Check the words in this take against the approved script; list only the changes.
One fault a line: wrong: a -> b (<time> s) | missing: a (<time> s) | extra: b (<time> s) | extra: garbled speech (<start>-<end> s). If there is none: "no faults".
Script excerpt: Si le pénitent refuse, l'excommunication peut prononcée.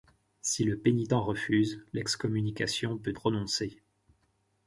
no faults